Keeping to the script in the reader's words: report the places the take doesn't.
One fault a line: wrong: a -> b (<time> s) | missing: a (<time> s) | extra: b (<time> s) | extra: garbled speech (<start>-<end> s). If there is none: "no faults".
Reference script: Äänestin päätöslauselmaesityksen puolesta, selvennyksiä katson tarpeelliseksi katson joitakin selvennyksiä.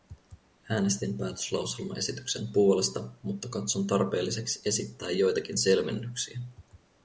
wrong: selvennyksiä -> mutta (3.2 s)
wrong: katson -> esittää (4.7 s)